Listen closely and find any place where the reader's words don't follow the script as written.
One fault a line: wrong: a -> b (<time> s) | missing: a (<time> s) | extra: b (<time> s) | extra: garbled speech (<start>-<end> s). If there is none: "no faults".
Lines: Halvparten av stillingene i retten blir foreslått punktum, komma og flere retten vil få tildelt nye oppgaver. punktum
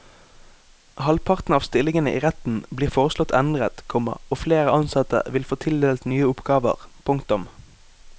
wrong: punktum -> endret (3.4 s)
wrong: retten -> ansatte (4.8 s)